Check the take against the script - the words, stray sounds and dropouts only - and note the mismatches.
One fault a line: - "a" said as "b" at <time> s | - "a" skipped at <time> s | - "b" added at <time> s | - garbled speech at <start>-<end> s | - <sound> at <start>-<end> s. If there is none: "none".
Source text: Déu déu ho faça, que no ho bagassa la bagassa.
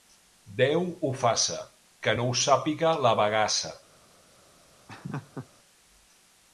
- "déu" skipped at 0.9 s
- "bagassa" said as "sàpiga" at 2.4 s
- laugh at 4.9-5.5 s